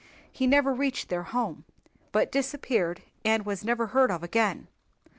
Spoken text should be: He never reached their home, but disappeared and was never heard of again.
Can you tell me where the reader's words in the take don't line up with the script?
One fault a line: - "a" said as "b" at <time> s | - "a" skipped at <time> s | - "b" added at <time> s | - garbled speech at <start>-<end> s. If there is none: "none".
none